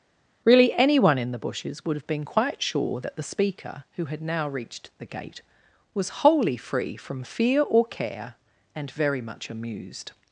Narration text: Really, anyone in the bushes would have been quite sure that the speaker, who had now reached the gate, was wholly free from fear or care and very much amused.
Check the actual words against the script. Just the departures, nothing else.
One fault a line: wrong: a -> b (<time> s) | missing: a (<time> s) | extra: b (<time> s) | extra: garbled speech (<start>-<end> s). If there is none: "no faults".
no faults